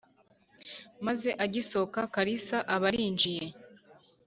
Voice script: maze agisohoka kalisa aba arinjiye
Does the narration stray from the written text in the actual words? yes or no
no